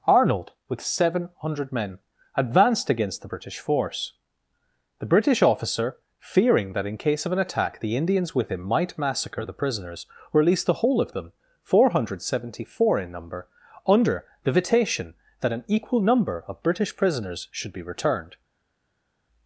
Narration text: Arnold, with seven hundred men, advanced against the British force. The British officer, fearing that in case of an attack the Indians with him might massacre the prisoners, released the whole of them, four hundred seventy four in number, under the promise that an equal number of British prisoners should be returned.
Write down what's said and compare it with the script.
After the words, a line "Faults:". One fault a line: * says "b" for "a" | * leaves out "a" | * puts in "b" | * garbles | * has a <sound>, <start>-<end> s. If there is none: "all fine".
Arnold, with seven hundred men, advanced against the British force. The British officer, fearing that in case of an attack the Indians with him might massacre the prisoners, released the whole of them, four hundred seventy four in number, under the vitation that an equal number of British prisoners should be returned.
Faults:
* says "vitation" for "promise"